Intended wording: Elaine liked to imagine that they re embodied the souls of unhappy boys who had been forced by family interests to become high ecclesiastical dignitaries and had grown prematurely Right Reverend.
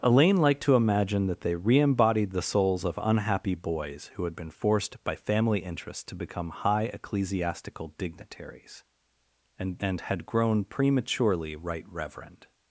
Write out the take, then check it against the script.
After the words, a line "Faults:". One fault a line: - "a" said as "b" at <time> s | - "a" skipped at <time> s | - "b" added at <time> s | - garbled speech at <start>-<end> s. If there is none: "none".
Elaine liked to imagine that they re embodied the souls of unhappy boys who had been forced by family interests to become high ecclesiastical dignitaries and and had grown prematurely Right Reverend.
Faults:
- "and" added at 9.8 s